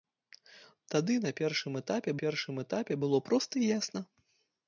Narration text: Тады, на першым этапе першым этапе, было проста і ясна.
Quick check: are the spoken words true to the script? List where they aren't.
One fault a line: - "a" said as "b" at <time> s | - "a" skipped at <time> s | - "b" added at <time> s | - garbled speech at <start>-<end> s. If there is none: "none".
none